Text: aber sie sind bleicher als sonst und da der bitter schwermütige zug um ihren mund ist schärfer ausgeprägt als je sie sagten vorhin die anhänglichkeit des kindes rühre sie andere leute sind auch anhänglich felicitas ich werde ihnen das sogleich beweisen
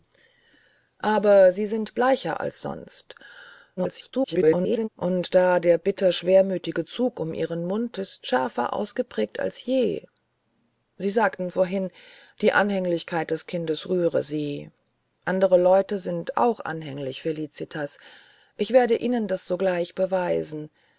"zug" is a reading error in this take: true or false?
false